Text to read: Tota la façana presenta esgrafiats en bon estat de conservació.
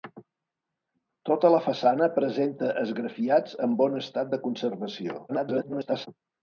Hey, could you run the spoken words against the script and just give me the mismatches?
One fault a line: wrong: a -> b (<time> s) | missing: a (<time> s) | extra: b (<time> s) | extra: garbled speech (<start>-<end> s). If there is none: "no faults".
extra: garbled speech (5.3-6.1 s)